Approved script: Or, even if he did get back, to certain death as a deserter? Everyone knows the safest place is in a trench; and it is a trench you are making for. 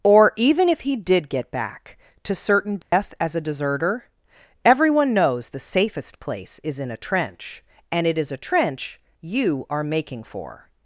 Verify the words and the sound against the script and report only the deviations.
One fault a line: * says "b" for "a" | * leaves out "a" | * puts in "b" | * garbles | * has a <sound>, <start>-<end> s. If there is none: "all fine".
* has a dropout, 2.8-2.9 s